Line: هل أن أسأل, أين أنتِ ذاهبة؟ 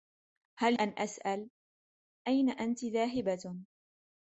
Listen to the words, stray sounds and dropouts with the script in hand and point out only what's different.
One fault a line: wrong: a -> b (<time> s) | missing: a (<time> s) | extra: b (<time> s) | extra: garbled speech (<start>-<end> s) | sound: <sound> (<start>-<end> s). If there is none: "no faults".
no faults